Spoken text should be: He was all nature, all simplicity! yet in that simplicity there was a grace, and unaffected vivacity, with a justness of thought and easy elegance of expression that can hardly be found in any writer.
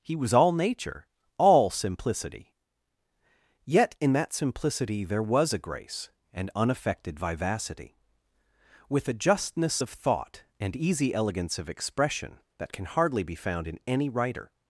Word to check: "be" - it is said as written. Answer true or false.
true